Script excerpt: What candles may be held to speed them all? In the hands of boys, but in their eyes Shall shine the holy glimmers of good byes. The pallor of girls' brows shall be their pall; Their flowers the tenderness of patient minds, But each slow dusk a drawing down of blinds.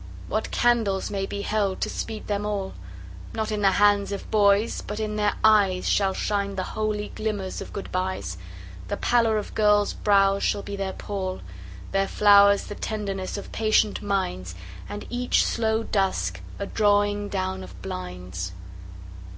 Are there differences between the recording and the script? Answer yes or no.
yes